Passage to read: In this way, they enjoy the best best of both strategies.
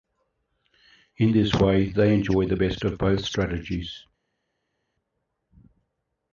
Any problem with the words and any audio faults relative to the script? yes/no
yes